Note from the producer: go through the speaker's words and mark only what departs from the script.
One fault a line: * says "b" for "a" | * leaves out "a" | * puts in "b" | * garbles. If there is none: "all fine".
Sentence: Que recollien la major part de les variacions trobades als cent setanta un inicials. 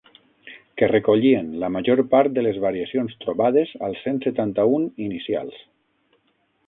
all fine